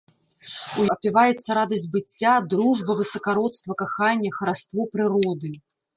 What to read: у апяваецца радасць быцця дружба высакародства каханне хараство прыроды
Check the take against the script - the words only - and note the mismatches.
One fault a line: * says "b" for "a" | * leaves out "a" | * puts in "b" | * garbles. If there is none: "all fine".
all fine